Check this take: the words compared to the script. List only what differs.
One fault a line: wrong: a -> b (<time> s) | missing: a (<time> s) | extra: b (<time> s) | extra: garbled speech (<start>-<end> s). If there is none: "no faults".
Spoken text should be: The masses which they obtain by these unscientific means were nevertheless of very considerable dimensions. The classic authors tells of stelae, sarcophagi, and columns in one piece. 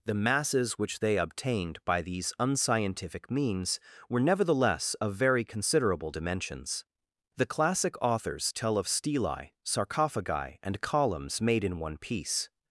wrong: obtain -> obtained (1.2 s)
wrong: tells -> tell (8.5 s)
extra: made (11.4 s)